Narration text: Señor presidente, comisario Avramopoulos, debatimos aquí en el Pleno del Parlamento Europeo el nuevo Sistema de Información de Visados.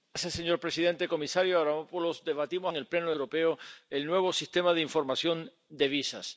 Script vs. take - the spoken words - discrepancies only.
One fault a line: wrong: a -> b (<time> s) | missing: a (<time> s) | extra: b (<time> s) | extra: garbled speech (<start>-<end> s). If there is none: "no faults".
missing: aquí (2.7 s)
missing: del Parlamento (3.1 s)